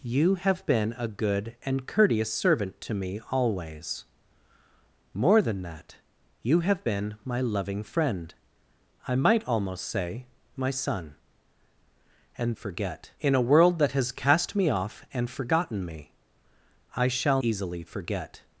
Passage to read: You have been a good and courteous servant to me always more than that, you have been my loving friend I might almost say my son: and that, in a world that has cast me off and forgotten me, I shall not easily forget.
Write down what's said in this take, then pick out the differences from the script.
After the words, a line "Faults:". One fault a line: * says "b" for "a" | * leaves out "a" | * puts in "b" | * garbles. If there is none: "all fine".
You have been a good and courteous servant to me always more than that, you have been my loving friend I might almost say my son: and forget, in a world that has cast me off and forgotten me, I shall easily forget.
Faults:
* says "forget" for "that"
* leaves out "not"